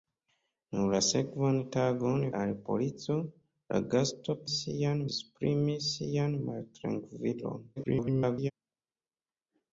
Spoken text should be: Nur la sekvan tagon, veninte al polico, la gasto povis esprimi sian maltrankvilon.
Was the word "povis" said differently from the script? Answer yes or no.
yes